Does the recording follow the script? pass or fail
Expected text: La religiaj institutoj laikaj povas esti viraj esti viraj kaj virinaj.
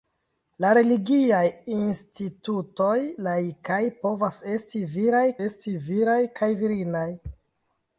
pass